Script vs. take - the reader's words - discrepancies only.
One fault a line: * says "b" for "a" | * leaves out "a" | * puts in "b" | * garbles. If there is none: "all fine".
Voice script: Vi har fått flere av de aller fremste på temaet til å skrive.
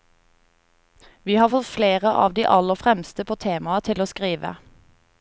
all fine